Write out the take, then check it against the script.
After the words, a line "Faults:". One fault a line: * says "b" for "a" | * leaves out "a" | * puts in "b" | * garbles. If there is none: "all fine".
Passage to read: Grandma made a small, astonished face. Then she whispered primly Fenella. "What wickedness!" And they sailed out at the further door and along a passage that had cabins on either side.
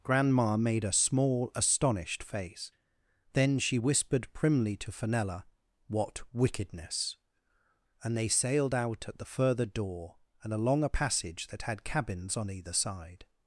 Grandma made a small, astonished face. Then she whispered primly to Fenella. "What wickedness!" And they sailed out at the further door and along a passage that had cabins on either side.
Faults:
* puts in "to"